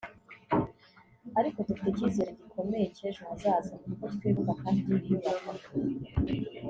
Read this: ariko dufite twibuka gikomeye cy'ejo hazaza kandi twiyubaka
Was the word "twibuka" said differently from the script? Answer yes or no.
yes